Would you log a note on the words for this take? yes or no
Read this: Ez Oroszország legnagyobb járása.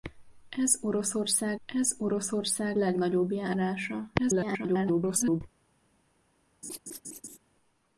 yes